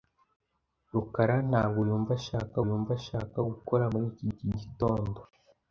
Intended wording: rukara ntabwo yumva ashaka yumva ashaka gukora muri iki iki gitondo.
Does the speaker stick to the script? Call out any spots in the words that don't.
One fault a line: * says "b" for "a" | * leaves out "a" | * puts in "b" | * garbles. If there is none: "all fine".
all fine